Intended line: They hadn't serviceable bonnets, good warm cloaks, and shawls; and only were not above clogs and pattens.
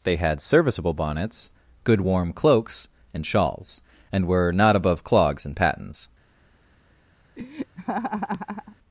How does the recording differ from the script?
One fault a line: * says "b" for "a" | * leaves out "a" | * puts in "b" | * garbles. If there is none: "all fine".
* says "had" for "hadn't"
* leaves out "only"